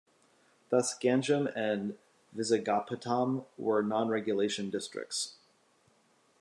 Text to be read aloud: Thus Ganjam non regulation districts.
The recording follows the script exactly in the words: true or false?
false